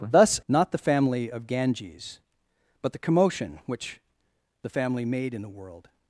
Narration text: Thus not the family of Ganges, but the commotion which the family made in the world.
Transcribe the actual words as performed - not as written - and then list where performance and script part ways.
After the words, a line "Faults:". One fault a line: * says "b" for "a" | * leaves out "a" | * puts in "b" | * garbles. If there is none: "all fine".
Thus not the family of Ganges, but the commotion which the family made in the world.
Faults:
all fine